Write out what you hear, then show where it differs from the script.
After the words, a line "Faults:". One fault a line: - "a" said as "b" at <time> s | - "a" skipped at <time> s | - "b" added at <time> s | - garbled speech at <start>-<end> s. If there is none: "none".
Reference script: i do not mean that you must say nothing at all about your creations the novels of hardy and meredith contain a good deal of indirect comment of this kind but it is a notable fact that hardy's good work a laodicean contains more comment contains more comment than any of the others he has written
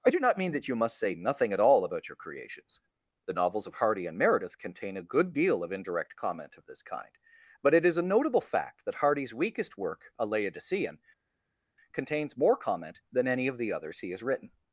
i do not mean that you must say nothing at all about your creations the novels of hardy and meredith contain a good deal of indirect comment of this kind but it is a notable fact that hardy's weakest work a laodicean contains more comment than any of the others he has written
Faults:
- "good" said as "weakest" at 9.3 s
- "contains more comment" skipped at 13.0 s